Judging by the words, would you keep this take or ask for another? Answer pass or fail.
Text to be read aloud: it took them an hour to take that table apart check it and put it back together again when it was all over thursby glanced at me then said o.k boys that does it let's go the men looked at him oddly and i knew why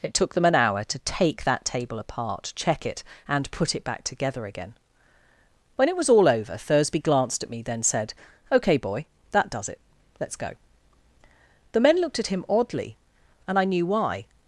fail